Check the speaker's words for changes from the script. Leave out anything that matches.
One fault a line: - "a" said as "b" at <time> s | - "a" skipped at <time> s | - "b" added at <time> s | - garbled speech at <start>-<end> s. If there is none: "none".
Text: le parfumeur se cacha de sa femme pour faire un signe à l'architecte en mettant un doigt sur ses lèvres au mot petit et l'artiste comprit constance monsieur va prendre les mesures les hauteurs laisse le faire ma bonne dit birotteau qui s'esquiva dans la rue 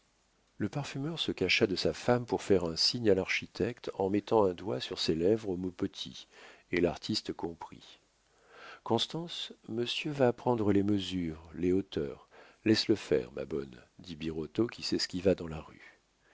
none